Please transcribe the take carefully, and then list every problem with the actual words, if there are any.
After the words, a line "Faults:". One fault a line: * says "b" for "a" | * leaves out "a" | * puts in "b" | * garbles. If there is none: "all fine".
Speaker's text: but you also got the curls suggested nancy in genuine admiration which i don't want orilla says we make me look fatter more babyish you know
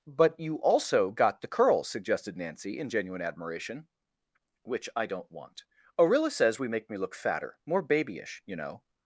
but you also got the curls suggested nancy in genuine admiration which i don't want orilla says we make me look fatter more babyish you know
Faults:
all fine